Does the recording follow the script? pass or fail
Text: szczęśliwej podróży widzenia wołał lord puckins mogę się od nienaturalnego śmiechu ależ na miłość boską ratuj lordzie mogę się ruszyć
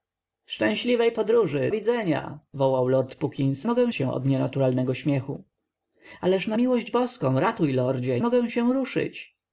pass